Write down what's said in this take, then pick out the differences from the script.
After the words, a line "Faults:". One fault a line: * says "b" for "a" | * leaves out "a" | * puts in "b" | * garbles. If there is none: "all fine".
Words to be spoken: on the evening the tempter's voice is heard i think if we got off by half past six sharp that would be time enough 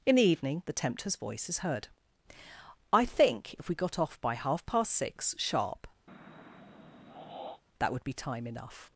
in the evening the tempter's voice is heard i think if we got off by half past six sharp that would be time enough
Faults:
* says "in" for "on"